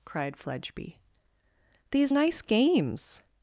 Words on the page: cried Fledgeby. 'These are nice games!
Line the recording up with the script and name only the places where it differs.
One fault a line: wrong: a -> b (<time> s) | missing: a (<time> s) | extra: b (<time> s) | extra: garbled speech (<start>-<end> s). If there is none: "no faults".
missing: are (2.1 s)